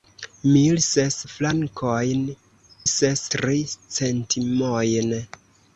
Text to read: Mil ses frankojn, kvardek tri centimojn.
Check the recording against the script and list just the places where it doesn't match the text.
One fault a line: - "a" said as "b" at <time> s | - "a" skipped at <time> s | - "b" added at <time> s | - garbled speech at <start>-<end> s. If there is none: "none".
- "kvardek" said as "ses" at 2.9 s